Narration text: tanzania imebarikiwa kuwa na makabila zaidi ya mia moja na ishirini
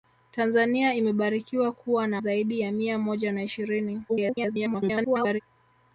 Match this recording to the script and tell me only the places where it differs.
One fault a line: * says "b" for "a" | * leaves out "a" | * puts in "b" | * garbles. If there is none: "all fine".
* leaves out "makabila"
* garbles